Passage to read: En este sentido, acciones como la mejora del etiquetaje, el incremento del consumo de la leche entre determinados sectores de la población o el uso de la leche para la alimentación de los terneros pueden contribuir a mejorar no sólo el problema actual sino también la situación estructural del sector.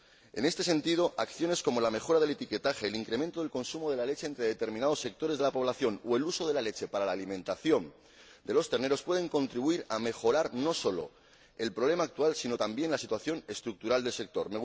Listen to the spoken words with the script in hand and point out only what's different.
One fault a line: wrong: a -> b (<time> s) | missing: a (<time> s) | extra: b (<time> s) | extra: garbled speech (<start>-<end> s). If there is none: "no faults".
no faults